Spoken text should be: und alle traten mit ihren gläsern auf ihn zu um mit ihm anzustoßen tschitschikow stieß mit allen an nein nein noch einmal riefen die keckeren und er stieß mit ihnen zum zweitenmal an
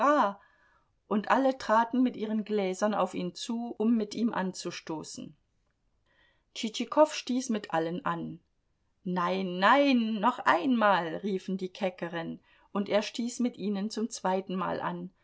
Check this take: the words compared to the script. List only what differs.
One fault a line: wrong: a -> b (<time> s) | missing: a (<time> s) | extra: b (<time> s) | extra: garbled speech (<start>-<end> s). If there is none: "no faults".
no faults